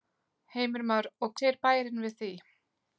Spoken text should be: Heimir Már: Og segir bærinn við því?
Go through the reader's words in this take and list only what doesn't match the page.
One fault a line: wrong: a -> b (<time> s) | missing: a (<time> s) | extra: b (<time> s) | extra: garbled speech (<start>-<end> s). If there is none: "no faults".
no faults